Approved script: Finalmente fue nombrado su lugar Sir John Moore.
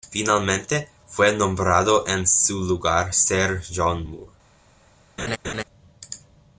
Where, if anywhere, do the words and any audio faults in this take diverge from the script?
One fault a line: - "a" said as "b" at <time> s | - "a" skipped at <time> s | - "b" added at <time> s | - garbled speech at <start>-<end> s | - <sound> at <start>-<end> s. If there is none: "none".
- "en" added at 2.1 s
- laugh at 5.2-5.6 s